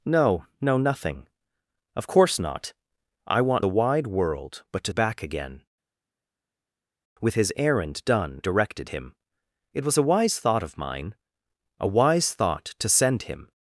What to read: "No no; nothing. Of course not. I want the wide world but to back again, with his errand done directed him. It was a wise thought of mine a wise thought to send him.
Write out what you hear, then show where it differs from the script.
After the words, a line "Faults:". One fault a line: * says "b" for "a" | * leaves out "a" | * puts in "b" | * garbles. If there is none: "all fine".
"No no; nothing. Of course not. I want the wide world but to back again, with his errand done directed him. It was a wise thought of mine a wise thought to send him.
Faults:
all fine